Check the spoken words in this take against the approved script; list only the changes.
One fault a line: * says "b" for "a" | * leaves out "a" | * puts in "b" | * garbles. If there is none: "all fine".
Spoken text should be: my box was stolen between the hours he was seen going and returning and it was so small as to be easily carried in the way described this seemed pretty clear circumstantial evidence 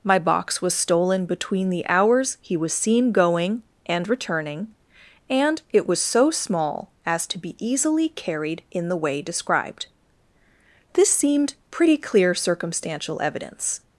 all fine